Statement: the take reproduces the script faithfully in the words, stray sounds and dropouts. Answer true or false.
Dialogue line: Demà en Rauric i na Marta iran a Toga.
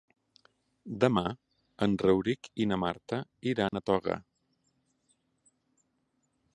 false